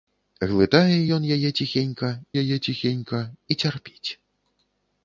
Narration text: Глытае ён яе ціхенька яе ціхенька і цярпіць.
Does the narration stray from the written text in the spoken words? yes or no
no